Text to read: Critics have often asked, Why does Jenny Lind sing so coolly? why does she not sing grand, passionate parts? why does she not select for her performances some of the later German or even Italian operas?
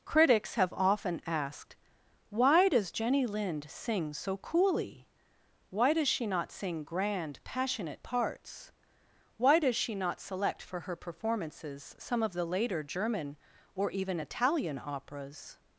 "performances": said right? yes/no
yes